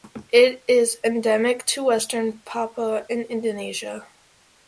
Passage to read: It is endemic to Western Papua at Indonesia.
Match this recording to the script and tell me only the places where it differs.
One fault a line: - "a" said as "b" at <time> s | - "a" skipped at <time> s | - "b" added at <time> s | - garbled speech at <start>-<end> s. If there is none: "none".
- "at" said as "in" at 3.1 s